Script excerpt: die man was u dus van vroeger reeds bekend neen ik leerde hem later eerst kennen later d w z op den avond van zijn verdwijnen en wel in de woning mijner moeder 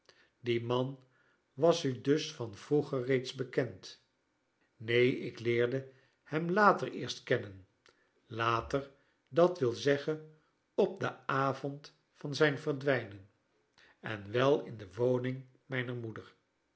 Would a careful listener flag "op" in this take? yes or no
no